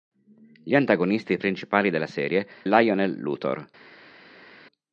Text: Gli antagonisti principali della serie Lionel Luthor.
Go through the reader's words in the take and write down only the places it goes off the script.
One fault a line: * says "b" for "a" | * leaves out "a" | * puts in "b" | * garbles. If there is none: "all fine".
all fine